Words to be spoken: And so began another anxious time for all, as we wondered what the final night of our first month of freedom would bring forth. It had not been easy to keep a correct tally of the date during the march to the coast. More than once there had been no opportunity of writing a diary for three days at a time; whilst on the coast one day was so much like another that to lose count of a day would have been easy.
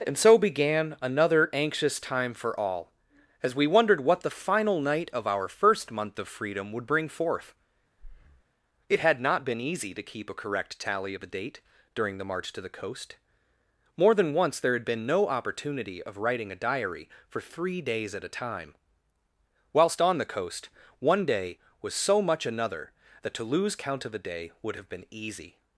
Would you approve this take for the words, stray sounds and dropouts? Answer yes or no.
no